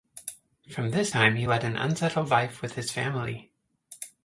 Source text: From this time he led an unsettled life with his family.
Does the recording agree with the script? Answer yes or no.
yes